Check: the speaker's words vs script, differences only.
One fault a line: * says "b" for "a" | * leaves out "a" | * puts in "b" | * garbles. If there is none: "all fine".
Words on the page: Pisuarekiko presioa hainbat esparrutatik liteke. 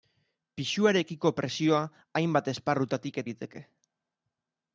all fine